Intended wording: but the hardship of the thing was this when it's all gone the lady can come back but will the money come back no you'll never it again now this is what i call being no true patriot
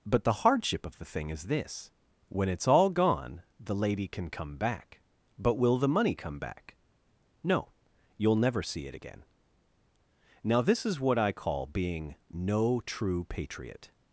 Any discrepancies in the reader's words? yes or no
yes